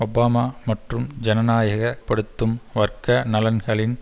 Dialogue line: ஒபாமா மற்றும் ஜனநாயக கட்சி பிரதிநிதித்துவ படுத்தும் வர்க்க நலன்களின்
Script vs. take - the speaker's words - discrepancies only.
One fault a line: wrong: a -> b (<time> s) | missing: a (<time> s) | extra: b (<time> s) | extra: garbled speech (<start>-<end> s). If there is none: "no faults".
missing: கட்சி பிரதிநிதித்துவ (2.0 s)